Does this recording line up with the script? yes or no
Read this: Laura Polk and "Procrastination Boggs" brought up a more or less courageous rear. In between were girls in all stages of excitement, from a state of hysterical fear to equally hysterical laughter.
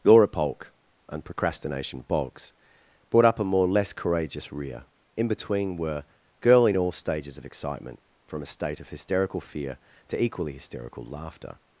no